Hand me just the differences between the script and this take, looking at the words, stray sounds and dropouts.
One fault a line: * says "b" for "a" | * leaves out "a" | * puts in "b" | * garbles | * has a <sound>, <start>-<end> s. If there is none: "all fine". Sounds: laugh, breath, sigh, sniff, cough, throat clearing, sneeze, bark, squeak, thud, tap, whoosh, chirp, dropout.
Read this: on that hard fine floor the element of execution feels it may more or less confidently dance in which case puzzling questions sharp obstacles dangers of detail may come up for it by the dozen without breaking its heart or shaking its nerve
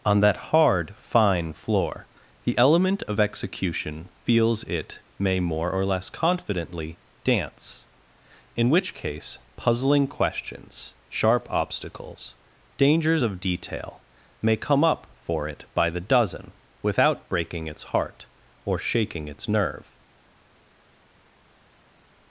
all fine